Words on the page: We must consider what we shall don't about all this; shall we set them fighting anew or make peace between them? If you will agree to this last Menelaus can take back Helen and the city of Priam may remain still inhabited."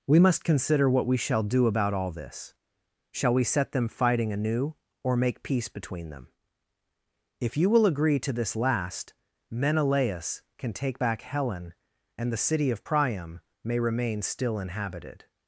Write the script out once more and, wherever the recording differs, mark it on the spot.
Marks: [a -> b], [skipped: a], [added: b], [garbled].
We must consider what we shall [don't -> do] about all this; shall we set them fighting anew or make peace between them? If you will agree to this last Menelaus can take back Helen and the city of Priam may remain still inhabited."